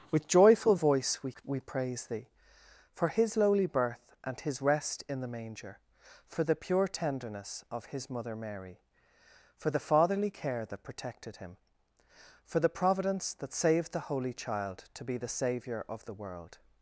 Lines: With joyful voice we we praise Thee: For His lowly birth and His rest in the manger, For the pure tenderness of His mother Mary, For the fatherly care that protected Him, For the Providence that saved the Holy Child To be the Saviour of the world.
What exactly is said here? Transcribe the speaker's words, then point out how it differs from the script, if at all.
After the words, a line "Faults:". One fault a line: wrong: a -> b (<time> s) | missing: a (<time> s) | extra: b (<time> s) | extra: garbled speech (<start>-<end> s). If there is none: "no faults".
With joyful voice we we praise Thee: For His lowly birth and His rest in the manger, For the pure tenderness of His mother Mary, For the fatherly care that protected Him, For the Providence that saved the Holy Child To be the Saviour of the world.
Faults:
no faults